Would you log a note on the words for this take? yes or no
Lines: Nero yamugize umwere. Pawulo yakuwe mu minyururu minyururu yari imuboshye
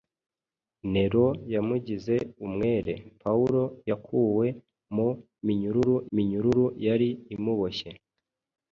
no